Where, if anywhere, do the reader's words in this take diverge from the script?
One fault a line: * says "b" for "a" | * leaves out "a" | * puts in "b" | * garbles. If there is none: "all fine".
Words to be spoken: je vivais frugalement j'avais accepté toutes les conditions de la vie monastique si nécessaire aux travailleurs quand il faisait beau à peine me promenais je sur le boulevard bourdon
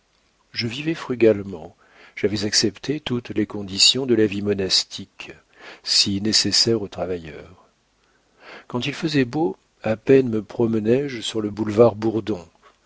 all fine